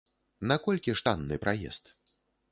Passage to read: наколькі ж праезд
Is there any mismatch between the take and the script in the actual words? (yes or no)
yes